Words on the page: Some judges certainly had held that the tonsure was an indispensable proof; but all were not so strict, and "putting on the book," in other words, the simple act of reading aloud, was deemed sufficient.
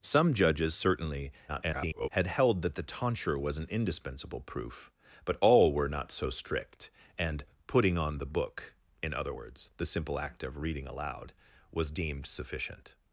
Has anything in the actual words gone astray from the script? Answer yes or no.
yes